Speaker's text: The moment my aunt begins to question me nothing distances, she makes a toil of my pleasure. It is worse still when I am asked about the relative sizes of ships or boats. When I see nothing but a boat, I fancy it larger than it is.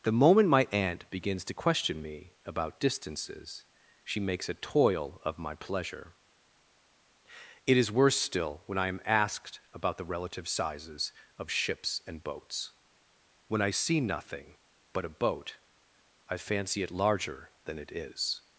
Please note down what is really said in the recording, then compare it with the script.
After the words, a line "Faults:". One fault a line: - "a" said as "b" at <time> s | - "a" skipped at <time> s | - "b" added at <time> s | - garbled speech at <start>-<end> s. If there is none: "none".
The moment my aunt begins to question me about distances, she makes a toil of my pleasure. It is worse still when I am asked about the relative sizes of ships and boats. When I see nothing but a boat, I fancy it larger than it is.
Faults:
- "nothing" said as "about" at 2.5 s
- "or" said as "and" at 12.1 s